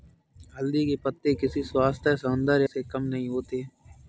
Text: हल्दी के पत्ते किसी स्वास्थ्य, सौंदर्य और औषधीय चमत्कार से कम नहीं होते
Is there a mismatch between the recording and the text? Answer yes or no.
yes